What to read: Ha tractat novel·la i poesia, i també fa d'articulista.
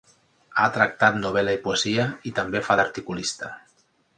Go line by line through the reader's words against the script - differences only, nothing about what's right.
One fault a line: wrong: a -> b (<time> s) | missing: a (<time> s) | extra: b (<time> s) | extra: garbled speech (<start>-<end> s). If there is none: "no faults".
no faults